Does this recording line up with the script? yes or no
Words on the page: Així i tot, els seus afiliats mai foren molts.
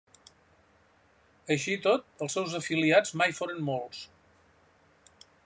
yes